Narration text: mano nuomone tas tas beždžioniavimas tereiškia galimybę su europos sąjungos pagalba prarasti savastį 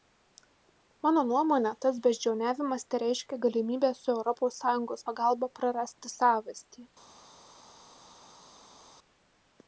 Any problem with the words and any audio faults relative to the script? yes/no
yes